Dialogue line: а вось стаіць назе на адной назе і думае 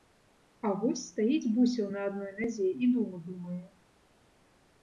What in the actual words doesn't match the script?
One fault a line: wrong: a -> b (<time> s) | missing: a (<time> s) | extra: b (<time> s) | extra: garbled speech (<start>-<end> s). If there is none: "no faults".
wrong: назе -> бусел (1.6 s)
extra: думу (3.0 s)